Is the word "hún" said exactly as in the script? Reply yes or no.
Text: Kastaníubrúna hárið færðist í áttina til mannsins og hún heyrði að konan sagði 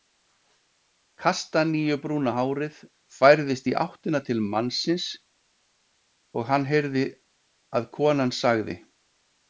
no